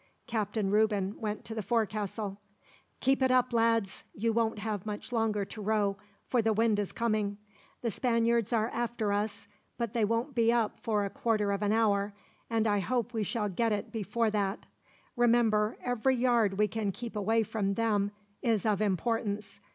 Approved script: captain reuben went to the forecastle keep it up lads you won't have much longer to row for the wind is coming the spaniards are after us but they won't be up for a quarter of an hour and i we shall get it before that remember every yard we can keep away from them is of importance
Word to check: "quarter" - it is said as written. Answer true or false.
true